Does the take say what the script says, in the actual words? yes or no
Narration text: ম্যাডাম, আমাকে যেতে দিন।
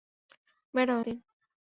no